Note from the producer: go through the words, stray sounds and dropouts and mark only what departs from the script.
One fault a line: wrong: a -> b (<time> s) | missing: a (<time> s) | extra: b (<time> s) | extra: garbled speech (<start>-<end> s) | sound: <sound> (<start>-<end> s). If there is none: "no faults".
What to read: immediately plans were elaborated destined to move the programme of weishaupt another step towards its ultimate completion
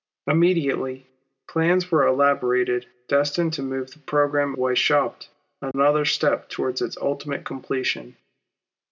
missing: of (4.5 s)
sound: dropout (5.7-5.7 s)